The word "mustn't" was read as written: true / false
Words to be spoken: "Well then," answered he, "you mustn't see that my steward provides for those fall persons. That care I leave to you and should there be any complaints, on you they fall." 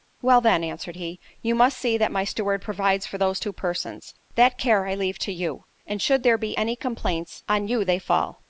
false